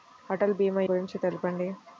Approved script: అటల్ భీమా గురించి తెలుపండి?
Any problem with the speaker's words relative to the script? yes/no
no